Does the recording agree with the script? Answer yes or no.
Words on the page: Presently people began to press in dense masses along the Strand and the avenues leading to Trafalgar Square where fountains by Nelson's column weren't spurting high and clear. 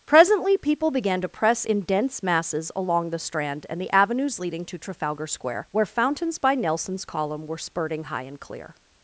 no